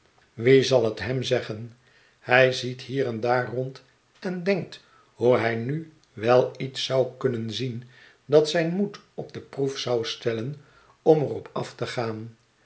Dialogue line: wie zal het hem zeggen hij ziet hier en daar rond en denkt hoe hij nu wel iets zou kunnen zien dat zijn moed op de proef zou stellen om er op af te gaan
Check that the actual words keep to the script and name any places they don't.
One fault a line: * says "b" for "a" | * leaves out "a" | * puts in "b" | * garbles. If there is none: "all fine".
all fine